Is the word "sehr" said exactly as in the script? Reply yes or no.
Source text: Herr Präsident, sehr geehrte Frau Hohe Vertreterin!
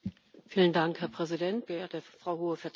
no